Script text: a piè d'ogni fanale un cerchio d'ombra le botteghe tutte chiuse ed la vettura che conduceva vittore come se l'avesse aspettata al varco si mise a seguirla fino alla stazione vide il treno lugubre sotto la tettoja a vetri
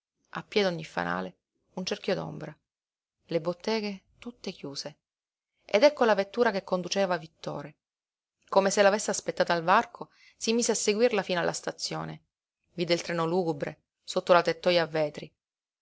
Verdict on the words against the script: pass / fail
fail